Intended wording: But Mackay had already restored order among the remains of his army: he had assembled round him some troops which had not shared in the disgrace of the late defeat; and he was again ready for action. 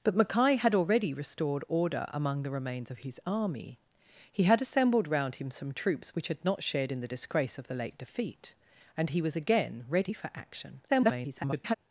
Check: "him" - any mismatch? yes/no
no